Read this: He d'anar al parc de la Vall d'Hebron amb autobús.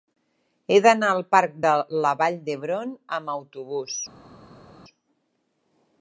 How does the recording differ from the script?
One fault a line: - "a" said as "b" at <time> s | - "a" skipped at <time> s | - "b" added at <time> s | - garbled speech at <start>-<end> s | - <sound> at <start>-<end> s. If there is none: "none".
none